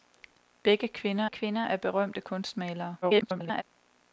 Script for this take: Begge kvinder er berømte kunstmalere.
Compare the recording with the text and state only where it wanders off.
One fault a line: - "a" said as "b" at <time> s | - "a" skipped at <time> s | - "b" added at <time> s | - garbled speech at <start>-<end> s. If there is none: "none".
- "kvinder" added at 1.3 s
- garbled speech at 3.0-3.6 s